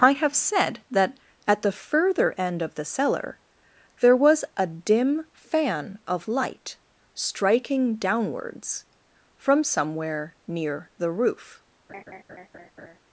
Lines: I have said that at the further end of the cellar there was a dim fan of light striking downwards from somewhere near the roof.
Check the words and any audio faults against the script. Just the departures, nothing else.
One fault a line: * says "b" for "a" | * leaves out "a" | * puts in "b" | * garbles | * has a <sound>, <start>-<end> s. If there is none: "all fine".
* has a laugh, 11.9-13.0 s